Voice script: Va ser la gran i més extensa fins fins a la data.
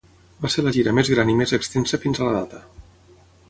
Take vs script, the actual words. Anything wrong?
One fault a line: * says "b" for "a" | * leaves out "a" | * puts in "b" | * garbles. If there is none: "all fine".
* puts in "gira més"
* leaves out "fins"